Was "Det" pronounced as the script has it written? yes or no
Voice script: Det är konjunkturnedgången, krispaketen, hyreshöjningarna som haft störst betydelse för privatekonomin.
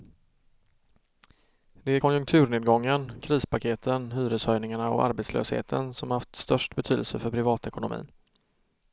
yes